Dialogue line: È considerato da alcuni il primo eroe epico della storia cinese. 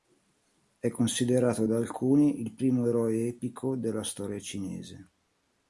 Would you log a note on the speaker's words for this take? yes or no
no